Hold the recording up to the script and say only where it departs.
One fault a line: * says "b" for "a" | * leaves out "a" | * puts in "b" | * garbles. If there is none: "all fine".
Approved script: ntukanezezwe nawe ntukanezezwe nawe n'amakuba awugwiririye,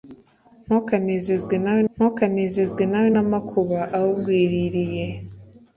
all fine